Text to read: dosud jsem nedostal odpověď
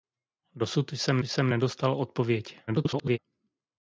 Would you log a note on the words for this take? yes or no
yes